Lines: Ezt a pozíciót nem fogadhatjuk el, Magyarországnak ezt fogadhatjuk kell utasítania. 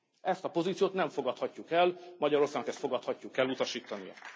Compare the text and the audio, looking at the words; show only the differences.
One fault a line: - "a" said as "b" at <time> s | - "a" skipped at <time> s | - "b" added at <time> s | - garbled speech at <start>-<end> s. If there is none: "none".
none